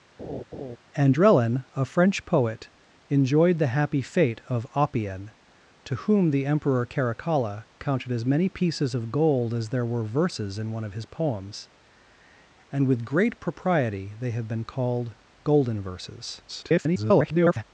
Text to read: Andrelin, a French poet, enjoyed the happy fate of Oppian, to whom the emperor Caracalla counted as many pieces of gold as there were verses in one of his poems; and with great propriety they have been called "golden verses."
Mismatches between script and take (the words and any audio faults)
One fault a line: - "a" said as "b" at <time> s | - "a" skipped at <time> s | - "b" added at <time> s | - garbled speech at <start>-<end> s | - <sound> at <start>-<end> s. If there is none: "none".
- laugh at 0.2-0.8 s
- garbled speech at 16.5-17.6 s